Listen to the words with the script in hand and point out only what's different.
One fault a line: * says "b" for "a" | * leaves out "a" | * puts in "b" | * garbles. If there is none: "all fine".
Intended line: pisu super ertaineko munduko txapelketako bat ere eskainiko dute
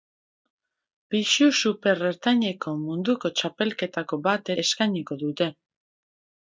* leaves out "ere"